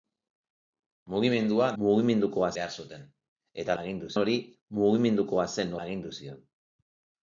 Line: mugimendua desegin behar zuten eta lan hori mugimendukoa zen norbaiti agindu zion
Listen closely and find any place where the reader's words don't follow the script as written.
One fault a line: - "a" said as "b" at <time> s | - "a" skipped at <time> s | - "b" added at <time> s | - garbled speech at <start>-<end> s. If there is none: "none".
- "desegin" said as "mugimendukoa" at 1.8 s
- "lan" said as "agindu" at 3.8 s
- "norbaiti" skipped at 5.7 s